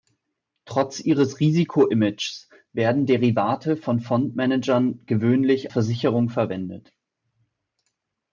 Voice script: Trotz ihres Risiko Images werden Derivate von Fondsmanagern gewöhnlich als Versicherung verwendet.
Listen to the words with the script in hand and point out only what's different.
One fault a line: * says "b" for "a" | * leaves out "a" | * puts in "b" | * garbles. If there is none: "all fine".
* leaves out "als"